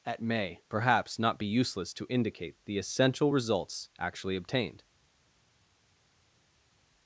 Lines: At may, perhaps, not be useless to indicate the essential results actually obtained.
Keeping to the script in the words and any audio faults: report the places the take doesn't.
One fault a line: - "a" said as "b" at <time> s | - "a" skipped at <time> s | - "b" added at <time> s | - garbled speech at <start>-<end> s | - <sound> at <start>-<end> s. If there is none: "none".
none